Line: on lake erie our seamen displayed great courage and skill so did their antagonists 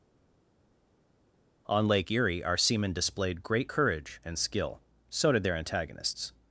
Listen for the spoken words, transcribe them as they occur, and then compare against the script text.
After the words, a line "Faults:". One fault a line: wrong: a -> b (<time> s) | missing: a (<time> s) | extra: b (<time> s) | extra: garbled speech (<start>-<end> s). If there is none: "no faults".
on lake erie our seamen displayed great courage and skill so did their antagonists
Faults:
no faults